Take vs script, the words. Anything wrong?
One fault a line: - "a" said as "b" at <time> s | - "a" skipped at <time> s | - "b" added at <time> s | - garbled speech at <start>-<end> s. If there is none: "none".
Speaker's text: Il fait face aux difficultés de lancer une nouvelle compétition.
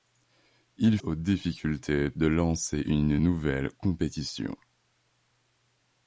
- "fait face" skipped at 1.0 s